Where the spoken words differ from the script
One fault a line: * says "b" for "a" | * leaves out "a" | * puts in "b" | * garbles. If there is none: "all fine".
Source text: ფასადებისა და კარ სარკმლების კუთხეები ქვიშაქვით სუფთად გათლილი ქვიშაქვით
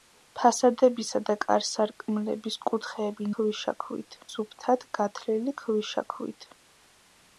all fine